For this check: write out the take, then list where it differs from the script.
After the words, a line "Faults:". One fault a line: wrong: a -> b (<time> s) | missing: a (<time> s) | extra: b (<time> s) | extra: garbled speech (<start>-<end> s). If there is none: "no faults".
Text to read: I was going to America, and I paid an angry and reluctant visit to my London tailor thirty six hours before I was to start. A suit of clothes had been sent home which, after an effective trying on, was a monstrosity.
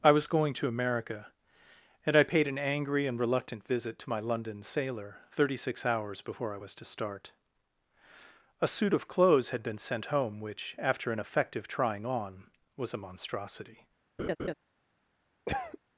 I was going to America, and I paid an angry and reluctant visit to my London sailor thirty six hours before I was to start. A suit of clothes had been sent home which, after an effective trying on, was a monstrosity.
Faults:
wrong: tailor -> sailor (4.6 s)